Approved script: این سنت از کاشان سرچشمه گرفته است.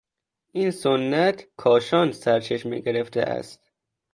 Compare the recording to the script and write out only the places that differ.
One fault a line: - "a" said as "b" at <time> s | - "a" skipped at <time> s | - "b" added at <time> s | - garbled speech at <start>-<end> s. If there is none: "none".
- "از" skipped at 1.5 s